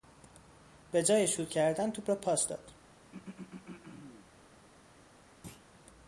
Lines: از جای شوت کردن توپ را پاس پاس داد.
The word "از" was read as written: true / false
false